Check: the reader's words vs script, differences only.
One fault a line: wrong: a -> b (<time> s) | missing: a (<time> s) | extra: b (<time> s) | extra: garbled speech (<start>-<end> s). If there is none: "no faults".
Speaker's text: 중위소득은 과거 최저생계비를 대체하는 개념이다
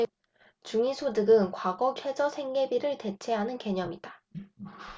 no faults